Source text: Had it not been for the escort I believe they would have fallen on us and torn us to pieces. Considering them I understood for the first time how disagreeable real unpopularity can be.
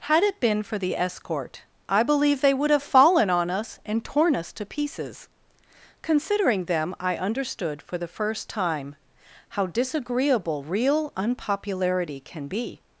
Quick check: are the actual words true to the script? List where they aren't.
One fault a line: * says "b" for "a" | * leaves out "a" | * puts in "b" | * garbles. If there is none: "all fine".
* leaves out "not"